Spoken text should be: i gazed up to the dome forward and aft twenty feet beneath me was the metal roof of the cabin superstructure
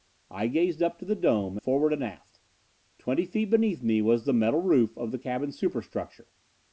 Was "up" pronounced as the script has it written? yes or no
yes